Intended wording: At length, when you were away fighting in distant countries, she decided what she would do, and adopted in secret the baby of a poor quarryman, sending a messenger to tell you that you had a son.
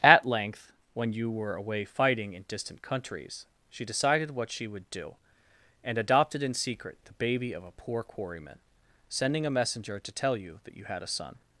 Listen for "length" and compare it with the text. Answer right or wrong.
right